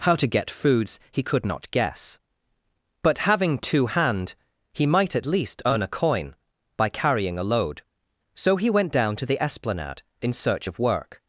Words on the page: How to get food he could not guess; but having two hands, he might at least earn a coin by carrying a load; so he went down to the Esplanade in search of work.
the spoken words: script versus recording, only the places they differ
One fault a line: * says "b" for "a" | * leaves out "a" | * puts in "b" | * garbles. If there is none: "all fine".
* says "foods" for "food"
* says "hand" for "hands"